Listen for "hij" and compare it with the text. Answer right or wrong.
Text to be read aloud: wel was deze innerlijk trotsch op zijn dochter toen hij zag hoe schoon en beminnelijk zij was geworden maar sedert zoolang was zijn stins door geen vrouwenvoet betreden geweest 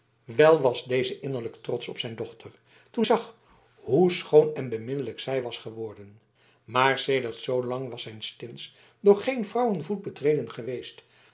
wrong